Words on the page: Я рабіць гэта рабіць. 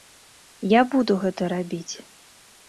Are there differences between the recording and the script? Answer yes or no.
yes